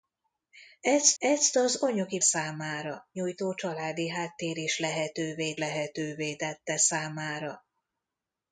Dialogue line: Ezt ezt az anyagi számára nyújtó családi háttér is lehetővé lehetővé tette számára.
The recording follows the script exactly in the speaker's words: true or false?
true